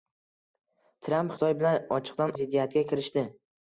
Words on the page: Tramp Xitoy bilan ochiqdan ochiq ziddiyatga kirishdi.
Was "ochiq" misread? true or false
true